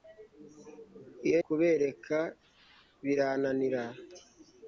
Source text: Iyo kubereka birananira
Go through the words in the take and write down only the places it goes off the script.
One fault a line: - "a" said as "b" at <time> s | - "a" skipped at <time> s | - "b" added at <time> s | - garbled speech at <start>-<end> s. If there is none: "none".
none